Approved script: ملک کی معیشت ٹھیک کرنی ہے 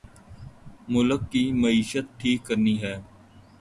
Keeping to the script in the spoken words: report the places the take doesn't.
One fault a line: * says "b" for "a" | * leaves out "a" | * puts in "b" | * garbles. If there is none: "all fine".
all fine